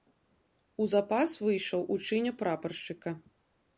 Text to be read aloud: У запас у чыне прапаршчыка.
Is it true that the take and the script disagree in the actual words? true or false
true